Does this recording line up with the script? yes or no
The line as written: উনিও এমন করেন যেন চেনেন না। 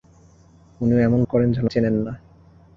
yes